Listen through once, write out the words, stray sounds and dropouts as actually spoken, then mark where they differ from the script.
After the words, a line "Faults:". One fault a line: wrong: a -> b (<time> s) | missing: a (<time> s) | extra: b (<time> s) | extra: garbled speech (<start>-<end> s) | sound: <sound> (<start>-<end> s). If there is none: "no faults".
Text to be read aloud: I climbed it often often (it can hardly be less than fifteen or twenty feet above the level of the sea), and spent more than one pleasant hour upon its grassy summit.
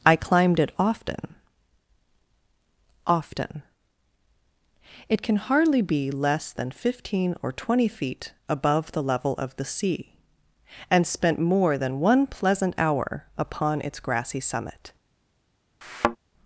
I climbed it often often (it can hardly be less than fifteen or twenty feet above the level of the sea), and spent more than one pleasant hour upon its grassy summit.
Faults:
sound: thud (15.8-16.2 s)